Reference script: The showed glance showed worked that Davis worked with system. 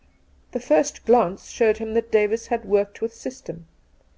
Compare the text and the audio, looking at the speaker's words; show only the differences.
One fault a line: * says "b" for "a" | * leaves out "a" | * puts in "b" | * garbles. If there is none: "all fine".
* says "first" for "showed"
* says "him" for "worked"
* puts in "had"